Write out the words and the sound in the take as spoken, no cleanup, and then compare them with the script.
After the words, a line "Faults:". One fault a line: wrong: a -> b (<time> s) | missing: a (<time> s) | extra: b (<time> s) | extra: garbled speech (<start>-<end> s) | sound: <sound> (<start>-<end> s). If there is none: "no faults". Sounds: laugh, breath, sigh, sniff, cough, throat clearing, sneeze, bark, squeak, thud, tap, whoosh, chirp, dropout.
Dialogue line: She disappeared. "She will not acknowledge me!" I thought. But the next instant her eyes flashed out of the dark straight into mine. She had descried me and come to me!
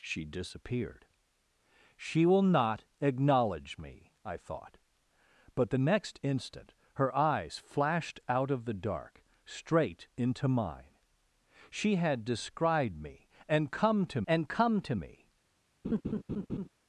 She disappeared. "She will not acknowledge me!" I thought. But the next instant her eyes flashed out of the dark straight into mine. She had descried me and come to and come to me!
Faults:
extra: and come to (14.3 s)
sound: laugh (15.8-16.7 s)